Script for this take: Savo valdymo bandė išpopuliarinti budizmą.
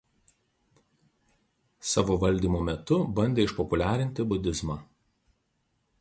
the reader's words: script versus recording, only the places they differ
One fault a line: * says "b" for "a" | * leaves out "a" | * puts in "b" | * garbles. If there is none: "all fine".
* puts in "metu"